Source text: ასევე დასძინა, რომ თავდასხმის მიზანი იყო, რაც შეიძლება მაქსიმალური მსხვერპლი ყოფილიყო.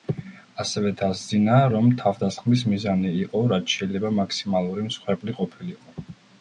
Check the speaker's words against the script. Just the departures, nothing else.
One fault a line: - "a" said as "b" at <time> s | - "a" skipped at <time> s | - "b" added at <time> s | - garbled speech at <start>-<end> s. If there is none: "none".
none